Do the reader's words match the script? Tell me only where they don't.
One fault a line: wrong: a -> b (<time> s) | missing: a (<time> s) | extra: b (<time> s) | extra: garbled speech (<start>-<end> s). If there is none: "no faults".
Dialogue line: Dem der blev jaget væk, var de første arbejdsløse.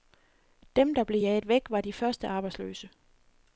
no faults